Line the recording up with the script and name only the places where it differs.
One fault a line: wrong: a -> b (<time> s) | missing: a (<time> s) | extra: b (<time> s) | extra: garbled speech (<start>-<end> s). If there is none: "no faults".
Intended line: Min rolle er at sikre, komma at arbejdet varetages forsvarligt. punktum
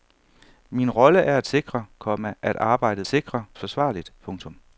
wrong: varetages -> sikre (3.1 s)